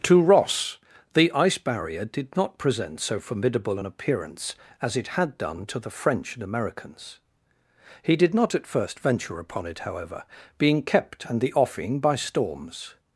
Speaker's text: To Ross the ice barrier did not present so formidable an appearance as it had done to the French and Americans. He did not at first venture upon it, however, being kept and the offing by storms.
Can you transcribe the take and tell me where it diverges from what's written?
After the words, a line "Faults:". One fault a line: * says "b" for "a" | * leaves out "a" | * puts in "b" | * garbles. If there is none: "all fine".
To Ross the ice barrier did not present so formidable an appearance as it had done to the French and Americans. He did not at first venture upon it, however, being kept and the offing by storms.
Faults:
all fine